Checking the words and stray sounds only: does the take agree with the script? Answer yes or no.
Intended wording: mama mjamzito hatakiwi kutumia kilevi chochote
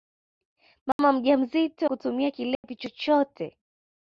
no